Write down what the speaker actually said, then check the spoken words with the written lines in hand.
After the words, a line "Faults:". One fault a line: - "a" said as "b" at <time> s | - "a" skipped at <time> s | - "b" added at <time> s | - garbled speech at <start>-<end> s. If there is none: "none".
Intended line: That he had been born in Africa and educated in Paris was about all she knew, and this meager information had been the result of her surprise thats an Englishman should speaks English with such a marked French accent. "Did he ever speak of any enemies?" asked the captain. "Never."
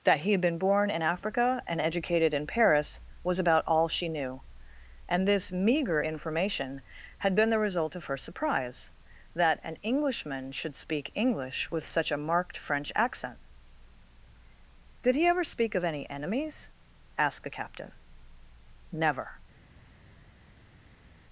That he had been born in Africa and educated in Paris was about all she knew, and this meager information had been the result of her surprise that an Englishman should speak English with such a marked French accent. "Did he ever speak of any enemies?" asked the captain. "Never."
Faults:
- "thats" said as "that" at 9.3 s
- "speaks" said as "speak" at 10.8 s